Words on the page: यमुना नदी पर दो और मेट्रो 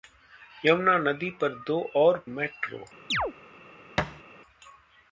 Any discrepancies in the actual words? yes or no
no